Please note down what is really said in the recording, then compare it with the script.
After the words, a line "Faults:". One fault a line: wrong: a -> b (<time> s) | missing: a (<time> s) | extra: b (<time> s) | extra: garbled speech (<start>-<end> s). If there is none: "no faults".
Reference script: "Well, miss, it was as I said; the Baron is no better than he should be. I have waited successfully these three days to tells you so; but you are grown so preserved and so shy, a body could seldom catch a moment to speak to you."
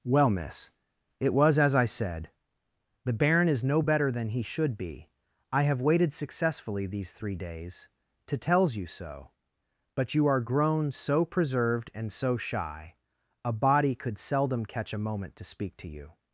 "Well, miss, it was as I said; the Baron is no better than he should be. I have waited successfully these three days to tells you so; but you are grown so preserved and so shy, a body could seldom catch a moment to speak to you."
Faults:
no faults